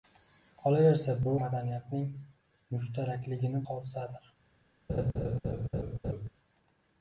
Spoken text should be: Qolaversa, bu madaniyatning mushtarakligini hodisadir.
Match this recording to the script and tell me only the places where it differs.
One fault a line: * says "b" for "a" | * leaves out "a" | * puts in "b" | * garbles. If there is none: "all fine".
all fine